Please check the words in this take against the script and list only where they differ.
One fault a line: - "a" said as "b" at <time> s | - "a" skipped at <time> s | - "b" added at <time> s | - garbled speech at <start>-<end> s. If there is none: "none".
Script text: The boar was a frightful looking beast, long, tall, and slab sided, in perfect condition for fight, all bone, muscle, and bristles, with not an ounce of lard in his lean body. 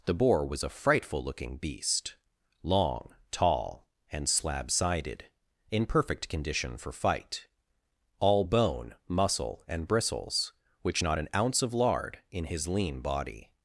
- "with" said as "which" at 10.8 s